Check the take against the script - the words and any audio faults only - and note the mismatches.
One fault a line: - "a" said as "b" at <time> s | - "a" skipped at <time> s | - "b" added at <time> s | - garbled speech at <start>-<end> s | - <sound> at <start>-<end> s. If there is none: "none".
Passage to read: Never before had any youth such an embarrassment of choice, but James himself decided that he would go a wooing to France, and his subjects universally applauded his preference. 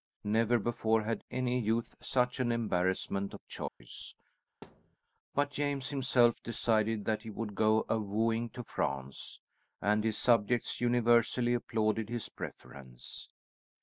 - dropout at 3.7-3.8 s
- thud at 4.6-5.0 s